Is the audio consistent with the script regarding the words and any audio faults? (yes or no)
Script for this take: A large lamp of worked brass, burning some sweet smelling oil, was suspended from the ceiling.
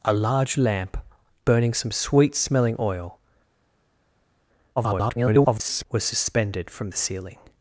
no